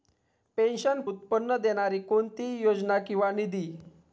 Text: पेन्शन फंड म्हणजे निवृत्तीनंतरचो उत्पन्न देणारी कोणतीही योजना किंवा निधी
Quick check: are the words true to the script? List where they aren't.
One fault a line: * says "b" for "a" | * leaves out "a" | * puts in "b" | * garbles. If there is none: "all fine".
* leaves out "फंड म्हणजे निवृत्तीनंतरचो"